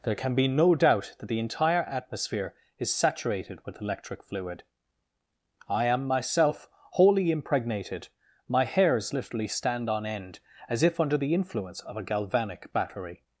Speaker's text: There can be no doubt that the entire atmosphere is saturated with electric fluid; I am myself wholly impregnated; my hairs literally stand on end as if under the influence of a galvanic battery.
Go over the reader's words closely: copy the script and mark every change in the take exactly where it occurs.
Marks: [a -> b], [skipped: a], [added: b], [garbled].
There can be no doubt that the entire atmosphere is saturated with electric fluid; I am myself wholly impregnated; my hairs literally stand on end as if under the influence of a galvanic battery.